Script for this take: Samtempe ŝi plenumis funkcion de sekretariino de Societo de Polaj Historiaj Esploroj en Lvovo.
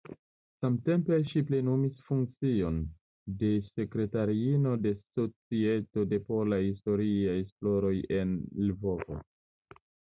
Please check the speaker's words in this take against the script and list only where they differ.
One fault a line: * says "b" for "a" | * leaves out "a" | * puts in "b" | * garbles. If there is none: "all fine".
all fine